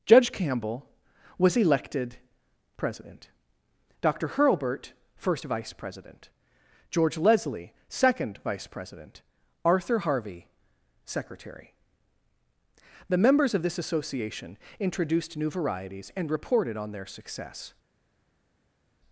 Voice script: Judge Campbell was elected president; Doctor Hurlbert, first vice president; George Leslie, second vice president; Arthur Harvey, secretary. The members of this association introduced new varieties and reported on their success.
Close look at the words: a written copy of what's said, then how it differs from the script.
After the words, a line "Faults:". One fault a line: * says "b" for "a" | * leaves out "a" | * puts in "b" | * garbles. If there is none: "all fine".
Judge Campbell was elected president; Doctor Hurlbert, first vice president; George Leslie, second vice president; Arthur Harvey, secretary. The members of this association introduced new varieties and reported on their success.
Faults:
all fine